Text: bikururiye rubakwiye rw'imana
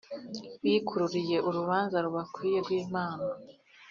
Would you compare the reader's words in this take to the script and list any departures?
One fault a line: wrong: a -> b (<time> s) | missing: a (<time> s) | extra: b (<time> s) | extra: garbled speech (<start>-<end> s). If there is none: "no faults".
extra: urubanza (1.5 s)